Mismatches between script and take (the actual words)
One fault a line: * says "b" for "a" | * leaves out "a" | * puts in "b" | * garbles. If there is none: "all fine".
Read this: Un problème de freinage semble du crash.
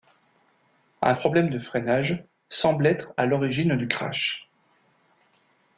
* puts in "être à l'origine"